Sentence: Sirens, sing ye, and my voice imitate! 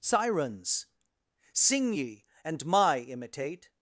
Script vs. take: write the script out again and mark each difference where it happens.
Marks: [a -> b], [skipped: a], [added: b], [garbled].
Sirens, sing ye, and my [skipped: voice] imitate!